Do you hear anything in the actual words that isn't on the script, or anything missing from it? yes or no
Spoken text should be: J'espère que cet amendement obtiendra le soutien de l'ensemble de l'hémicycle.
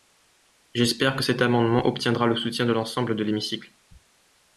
no